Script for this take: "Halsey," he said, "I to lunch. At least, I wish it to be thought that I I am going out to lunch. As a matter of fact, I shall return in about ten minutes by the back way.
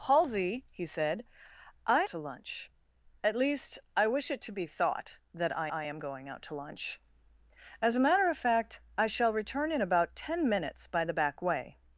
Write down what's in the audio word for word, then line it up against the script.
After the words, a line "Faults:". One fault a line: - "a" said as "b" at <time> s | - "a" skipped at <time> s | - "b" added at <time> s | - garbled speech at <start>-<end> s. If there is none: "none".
"Halsey," he said, "I to lunch. At least, I wish it to be thought that I I am going out to lunch. As a matter of fact, I shall return in about ten minutes by the back way.
Faults:
none